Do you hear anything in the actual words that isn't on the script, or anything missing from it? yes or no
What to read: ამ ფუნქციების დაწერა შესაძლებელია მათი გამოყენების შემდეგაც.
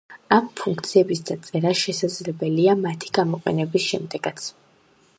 no